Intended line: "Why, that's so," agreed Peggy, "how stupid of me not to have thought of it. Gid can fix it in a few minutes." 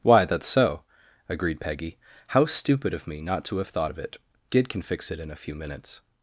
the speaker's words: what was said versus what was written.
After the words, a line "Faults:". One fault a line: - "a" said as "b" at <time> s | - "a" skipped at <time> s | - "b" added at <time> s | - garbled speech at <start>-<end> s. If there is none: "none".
"Why, that's so," agreed Peggy, "how stupid of me not to have thought of it. Gid can fix it in a few minutes."
Faults:
none